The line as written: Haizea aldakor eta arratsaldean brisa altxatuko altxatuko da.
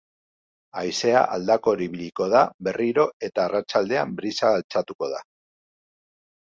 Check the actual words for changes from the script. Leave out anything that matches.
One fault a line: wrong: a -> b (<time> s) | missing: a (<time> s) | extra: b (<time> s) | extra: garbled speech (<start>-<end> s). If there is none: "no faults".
extra: ibiliko da berriro (1.9 s)
missing: altxatuko (5.1 s)